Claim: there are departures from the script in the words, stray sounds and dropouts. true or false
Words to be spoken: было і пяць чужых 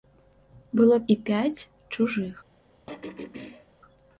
true